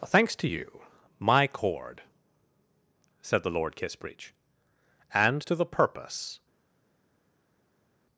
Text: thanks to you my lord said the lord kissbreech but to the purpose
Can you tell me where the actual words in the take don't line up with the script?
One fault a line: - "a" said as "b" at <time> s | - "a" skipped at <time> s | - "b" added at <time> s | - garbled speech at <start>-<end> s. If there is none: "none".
- "lord" said as "cord" at 1.5 s
- "but" said as "and" at 5.1 s